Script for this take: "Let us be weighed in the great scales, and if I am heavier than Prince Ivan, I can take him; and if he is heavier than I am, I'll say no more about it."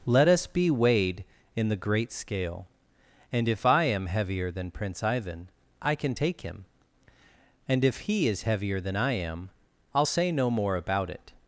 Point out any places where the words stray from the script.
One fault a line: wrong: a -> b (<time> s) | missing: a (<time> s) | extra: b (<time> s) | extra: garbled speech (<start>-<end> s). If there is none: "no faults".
wrong: scales -> scale (2.1 s)